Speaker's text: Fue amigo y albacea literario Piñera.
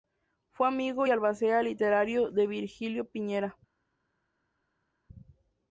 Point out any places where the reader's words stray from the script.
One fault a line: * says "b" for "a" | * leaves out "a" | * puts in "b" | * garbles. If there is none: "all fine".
* puts in "de Virgilio"